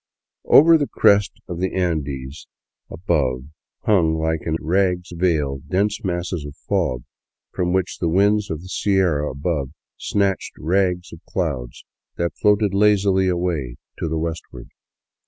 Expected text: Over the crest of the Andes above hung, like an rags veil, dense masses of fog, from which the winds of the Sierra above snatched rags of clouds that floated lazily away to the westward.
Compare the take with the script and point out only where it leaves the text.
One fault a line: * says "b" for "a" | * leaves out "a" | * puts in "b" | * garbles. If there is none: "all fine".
all fine